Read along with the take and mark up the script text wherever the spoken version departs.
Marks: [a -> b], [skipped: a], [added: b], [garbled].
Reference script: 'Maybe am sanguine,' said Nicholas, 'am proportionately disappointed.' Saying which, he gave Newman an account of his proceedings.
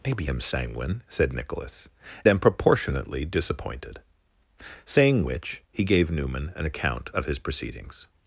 'Maybe am sanguine,' said Nicholas, 'am proportionately disappointed.' Saying which, he gave Newman an account of his proceedings.